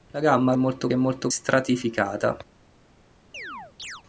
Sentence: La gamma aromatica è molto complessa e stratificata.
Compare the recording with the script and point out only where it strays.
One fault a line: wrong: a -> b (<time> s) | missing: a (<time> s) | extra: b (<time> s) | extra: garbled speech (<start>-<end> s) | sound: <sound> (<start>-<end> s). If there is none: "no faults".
wrong: aromatica -> molto (0.6 s)
missing: complessa e (1.3 s)
sound: chirp (3.3-4.0 s)